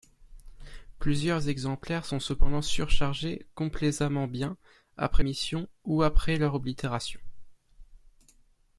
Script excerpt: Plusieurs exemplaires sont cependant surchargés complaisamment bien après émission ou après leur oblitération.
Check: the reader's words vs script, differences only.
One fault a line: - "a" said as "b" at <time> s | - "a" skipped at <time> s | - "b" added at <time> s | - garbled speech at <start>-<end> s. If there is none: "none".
none